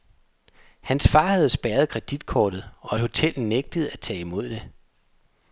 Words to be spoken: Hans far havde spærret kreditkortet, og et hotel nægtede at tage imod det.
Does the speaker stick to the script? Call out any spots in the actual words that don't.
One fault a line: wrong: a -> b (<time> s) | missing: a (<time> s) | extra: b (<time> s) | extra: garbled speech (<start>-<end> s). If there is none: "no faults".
no faults